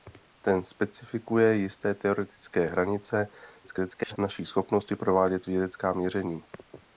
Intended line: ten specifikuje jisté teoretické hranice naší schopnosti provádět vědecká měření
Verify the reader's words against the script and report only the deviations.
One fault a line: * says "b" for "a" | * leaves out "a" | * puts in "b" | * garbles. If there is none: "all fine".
* garbles